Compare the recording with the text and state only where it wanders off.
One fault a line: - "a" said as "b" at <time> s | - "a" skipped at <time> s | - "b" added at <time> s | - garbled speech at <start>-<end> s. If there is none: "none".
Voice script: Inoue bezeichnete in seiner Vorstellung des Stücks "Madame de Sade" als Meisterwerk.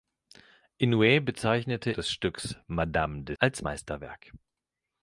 - "in seiner Vorstellung" skipped at 1.9 s
- "Sade" skipped at 3.3 s